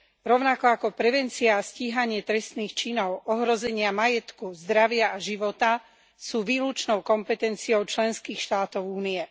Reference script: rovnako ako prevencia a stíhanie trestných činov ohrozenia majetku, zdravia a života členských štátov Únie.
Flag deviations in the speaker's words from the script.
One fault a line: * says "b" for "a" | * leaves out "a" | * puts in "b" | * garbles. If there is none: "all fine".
* puts in "sú výlučnou kompetenciou"